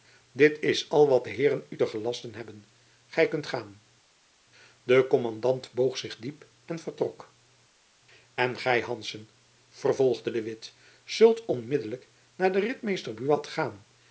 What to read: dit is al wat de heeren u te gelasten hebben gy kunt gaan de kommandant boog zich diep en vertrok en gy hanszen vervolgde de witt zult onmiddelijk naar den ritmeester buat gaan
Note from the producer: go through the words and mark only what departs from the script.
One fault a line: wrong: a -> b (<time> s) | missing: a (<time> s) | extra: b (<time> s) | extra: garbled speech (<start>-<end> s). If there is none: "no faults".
no faults